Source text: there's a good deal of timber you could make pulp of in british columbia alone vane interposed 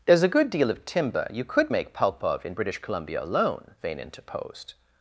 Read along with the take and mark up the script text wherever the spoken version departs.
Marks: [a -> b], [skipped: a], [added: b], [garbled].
there's a good deal of timber you could make pulp of in british columbia alone vane interposed